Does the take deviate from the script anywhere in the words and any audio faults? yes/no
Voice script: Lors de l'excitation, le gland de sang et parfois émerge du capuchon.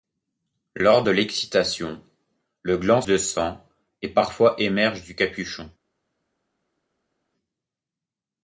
no